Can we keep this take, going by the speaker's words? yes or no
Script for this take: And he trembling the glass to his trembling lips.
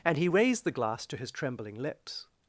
no